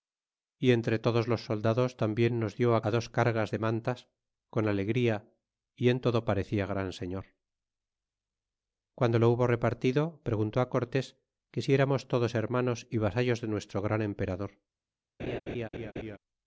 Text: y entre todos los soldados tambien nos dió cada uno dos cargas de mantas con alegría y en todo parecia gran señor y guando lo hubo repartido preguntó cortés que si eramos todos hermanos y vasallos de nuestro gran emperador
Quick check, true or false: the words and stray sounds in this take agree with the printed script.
false